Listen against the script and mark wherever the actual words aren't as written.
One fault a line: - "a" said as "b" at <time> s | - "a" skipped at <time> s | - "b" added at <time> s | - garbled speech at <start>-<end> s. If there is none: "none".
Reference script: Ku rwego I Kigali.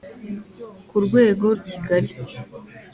none